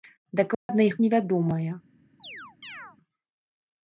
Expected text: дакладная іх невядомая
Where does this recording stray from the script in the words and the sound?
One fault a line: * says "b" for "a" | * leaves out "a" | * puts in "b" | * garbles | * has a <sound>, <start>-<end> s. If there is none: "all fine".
* has a dropout, 0.5-0.7 s
* has a chirp, 2.2-3.0 s